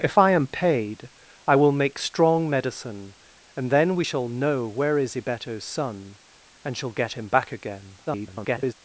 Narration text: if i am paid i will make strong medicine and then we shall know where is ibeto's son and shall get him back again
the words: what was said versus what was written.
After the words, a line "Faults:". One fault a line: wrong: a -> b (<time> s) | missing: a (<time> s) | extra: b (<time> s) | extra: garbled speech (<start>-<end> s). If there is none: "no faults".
if i am paid i will make strong medicine and then we shall know where is ibeto's son and shall get him back again [garbled]
Faults:
extra: garbled speech (8.1-8.7 s)